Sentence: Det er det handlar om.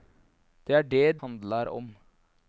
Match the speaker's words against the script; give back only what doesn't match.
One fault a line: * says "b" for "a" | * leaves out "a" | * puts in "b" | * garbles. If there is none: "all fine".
all fine